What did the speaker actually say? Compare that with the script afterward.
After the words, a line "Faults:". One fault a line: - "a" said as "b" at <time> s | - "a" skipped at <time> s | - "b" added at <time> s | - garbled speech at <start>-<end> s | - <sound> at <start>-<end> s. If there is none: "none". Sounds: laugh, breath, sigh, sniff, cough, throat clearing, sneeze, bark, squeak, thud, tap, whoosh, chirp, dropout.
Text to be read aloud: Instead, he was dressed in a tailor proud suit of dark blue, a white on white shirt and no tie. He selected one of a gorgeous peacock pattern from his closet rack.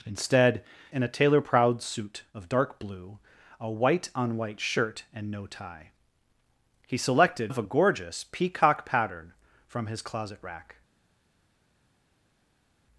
Instead, in a tailor proud suit of dark blue, a white on white shirt and no tie. He selected of a gorgeous peacock pattern from his closet rack.
Faults:
- "he was dressed" skipped at 0.6 s
- "one" skipped at 7.5 s